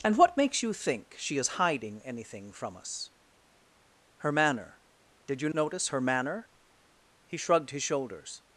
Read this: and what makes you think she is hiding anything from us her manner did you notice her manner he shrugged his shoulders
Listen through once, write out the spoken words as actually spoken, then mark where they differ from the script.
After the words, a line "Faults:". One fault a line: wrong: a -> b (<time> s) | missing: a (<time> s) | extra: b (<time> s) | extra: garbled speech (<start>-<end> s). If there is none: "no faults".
and what makes you think she is hiding anything from us her manner did you notice her manner he shrugged his shoulders
Faults:
no faults